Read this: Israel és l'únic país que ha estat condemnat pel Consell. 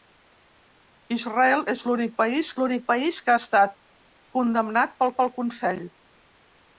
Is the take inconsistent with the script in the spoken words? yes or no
yes